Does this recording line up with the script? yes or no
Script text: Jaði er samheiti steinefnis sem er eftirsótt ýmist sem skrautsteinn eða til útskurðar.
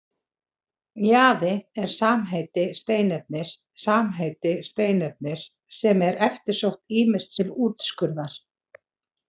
no